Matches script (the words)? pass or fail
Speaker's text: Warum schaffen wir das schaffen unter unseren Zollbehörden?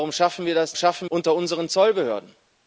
pass